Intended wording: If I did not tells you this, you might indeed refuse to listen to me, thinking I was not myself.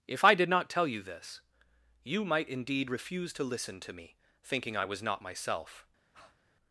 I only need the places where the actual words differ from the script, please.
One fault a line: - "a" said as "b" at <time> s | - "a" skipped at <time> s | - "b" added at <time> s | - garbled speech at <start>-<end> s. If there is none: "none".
- "tells" said as "tell" at 0.7 s